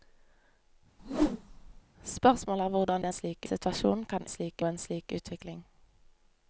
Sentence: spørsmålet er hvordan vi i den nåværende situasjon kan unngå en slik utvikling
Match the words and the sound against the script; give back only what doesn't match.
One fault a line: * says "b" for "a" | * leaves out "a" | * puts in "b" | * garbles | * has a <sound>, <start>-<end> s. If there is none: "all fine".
* has a whoosh, 1.0-1.8 s
* leaves out "vi"
* says "slik" for "nåværende"
* says "slik" for "unngå"